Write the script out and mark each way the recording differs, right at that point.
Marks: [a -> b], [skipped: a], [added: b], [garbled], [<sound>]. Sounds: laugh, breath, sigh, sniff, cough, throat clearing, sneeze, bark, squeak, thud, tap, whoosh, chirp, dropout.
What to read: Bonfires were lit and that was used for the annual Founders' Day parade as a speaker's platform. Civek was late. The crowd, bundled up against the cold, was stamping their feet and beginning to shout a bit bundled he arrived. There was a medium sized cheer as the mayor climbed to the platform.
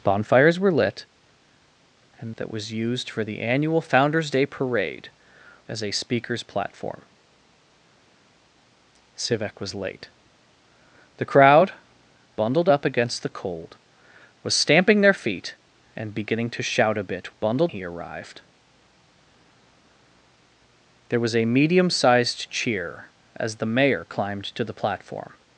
Bonfires were lit and that was used for the annual Founders' Day parade as a speaker's platform. Civek was late. The crowd, bundled up against the cold, was stamping their feet and beginning to shout a bit bundled he arrived. There was a medium sized cheer as the mayor climbed to the platform.